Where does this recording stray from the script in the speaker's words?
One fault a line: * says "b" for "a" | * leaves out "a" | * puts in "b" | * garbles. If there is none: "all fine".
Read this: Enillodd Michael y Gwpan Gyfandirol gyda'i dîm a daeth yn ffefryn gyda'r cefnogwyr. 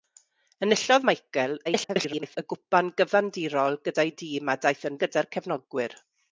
* garbles
* leaves out "ffefryn"